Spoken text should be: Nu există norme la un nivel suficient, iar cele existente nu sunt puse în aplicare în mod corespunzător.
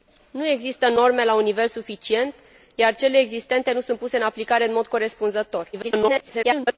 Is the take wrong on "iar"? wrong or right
right